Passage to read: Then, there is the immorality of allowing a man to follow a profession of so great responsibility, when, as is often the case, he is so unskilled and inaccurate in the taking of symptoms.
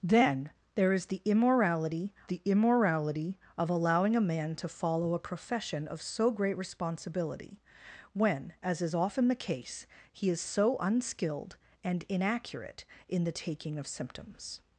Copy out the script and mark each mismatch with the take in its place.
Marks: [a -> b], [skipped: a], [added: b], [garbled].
Then, there is the immorality [added: the immorality] of allowing a man to follow a profession of so great responsibility, when, as is often the case, he is so unskilled and inaccurate in the taking of symptoms.